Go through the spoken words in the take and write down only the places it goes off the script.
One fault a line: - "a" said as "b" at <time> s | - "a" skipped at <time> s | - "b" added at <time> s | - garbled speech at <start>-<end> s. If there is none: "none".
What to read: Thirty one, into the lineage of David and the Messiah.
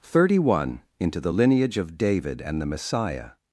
none